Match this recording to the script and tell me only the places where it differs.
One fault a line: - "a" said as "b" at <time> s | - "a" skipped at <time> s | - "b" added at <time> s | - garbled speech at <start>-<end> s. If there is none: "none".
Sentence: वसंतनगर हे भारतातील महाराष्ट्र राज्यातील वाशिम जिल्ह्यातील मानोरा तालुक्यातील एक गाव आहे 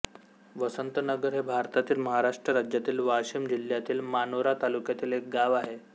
none